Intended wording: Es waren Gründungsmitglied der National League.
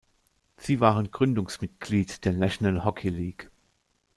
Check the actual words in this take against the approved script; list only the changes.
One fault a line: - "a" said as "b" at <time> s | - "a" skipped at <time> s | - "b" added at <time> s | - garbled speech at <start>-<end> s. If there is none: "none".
- "Es" said as "Sie" at 0.6 s
- "Hockey" added at 2.8 s